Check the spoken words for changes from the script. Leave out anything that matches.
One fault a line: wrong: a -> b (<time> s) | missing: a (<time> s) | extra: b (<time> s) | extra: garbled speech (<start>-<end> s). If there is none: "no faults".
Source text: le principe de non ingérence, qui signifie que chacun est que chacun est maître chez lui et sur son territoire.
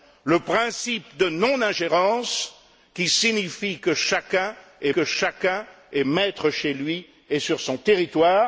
no faults